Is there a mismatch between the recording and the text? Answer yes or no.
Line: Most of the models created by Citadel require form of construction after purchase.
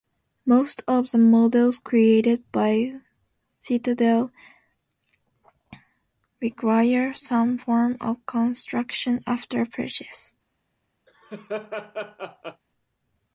yes